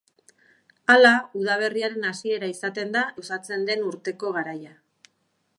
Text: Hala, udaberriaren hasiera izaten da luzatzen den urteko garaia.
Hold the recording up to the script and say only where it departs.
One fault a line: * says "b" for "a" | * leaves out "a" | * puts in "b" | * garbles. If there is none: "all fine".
all fine